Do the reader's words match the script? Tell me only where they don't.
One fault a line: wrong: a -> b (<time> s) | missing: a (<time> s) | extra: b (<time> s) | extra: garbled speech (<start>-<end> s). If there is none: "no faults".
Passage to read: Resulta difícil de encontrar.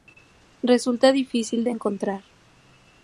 no faults